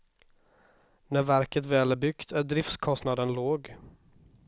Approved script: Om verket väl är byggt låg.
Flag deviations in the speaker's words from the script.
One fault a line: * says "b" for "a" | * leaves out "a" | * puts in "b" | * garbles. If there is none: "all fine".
* says "När" for "Om"
* puts in "är driftskostnaden"